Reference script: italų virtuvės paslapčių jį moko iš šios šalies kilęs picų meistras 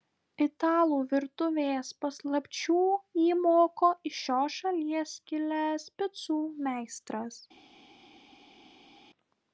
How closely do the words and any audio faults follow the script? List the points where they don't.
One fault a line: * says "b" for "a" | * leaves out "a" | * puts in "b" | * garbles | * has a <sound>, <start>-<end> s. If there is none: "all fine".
all fine